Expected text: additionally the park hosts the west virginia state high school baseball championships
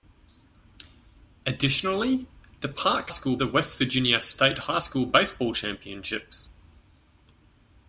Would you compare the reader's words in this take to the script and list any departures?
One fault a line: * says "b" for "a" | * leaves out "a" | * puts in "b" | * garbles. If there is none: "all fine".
* says "school" for "hosts"